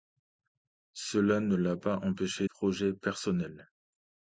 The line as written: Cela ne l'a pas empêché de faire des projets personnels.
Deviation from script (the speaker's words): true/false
true